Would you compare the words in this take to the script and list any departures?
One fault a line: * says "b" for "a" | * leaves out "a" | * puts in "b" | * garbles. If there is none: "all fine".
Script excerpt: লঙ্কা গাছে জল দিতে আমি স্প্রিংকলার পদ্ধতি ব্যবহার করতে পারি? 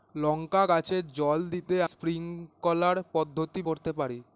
* leaves out "আমি"
* leaves out "ব্যবহার"